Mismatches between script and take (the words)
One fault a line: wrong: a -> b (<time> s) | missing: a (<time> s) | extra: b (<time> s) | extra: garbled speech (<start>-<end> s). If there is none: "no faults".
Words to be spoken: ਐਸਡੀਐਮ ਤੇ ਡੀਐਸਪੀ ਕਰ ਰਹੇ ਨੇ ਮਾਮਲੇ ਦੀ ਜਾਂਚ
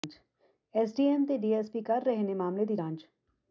no faults